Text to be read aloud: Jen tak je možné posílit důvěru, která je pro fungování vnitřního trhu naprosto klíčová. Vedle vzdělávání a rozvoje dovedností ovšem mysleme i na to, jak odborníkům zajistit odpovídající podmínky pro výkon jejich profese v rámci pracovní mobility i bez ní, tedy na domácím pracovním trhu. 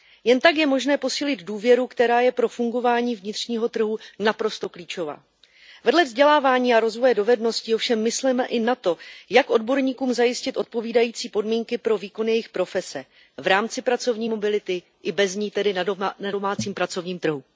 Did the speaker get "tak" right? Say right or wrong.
right